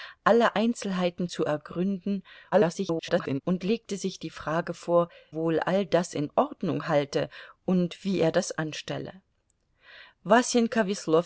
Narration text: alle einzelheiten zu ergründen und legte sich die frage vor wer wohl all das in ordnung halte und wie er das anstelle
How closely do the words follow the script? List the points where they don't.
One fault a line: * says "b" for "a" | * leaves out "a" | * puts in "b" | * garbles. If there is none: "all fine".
* garbles
* leaves out "wer"